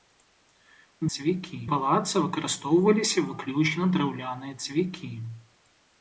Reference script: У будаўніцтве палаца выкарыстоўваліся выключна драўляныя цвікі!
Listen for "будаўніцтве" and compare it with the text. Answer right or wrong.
wrong